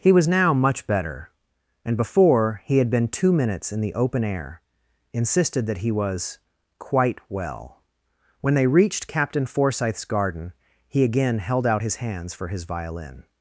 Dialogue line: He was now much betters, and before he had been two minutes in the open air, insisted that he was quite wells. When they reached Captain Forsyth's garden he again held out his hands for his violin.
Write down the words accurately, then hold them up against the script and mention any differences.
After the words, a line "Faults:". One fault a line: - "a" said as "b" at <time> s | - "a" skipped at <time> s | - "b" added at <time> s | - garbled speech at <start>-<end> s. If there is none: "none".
He was now much better, and before he had been two minutes in the open air, insisted that he was quite well. When they reached Captain Forsyth's garden he again held out his hands for his violin.
Faults:
- "betters" said as "better" at 0.9 s
- "wells" said as "well" at 7.3 s